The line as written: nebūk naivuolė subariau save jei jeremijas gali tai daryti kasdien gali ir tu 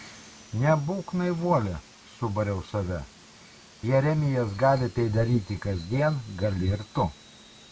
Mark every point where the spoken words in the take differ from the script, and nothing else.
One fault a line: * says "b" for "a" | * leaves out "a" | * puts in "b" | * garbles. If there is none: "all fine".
* leaves out "jei"